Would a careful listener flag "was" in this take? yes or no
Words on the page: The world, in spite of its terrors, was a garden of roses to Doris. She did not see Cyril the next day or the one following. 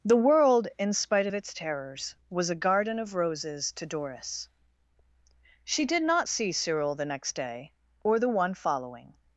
no